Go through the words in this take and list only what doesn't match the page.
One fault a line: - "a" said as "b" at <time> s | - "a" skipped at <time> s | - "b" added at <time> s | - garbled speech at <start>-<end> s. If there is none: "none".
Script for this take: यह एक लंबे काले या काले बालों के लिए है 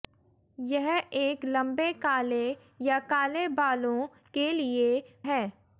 none